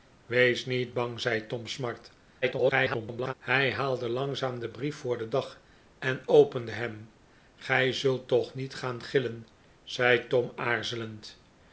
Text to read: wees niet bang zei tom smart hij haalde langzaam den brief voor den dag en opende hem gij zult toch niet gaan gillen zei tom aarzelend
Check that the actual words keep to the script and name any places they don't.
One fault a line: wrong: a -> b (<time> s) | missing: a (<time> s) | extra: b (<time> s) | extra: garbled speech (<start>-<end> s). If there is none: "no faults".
extra: garbled speech (2.4-3.3 s)